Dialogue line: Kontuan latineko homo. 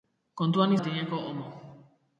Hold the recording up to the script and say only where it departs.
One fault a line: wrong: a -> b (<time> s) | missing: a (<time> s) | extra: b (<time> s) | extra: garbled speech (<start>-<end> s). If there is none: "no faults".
no faults